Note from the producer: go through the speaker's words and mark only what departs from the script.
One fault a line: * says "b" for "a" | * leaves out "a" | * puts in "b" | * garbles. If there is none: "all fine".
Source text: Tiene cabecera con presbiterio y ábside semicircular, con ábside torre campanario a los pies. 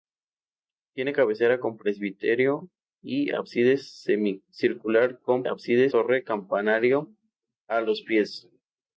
all fine